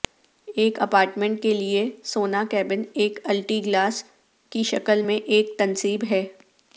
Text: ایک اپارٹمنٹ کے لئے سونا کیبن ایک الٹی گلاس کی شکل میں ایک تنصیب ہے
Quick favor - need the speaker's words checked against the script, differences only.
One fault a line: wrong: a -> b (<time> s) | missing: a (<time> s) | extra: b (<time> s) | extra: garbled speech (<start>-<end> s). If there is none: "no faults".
no faults